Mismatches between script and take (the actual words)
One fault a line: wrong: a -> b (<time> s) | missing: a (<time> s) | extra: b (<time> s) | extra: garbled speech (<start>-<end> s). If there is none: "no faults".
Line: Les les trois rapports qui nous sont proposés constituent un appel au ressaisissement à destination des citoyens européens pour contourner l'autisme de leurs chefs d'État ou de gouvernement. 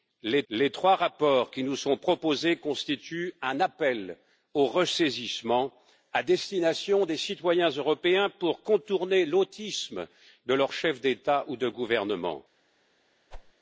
no faults